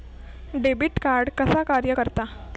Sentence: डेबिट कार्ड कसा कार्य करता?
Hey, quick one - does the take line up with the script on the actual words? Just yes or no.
yes